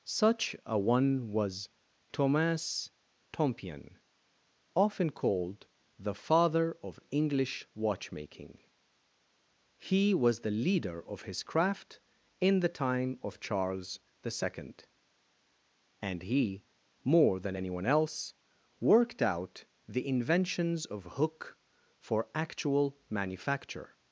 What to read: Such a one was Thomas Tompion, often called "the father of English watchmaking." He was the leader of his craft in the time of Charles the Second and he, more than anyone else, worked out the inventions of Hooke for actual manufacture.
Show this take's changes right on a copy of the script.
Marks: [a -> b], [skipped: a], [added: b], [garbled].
Such a one was Thomas Tompion, often called "the father of English watchmaking." He was the leader of his craft in the time of Charles the Second and he, more than anyone else, worked out the inventions of Hooke for actual manufacture.